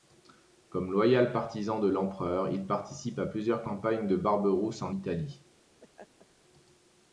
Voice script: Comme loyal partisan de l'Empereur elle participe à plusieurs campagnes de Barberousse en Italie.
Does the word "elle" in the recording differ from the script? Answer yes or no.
yes